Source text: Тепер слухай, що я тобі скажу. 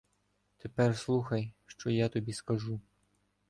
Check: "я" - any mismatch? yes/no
no